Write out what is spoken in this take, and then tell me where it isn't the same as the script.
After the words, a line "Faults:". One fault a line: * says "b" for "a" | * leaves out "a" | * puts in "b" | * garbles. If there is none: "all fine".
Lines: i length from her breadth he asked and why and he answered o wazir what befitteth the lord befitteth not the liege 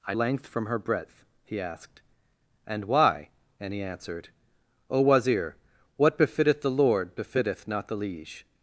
i length from her breadth he asked and why and he answered o wazir what befitteth the lord befitteth not the liege
Faults:
all fine